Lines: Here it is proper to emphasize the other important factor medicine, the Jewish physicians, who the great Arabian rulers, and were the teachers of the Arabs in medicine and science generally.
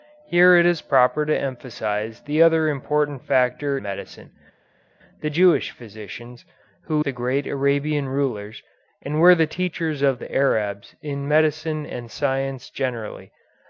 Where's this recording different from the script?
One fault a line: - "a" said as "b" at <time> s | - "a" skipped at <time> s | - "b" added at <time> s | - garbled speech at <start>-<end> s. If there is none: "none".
none